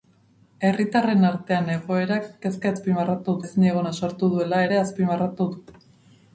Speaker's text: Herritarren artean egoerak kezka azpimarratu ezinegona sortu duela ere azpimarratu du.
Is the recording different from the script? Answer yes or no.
no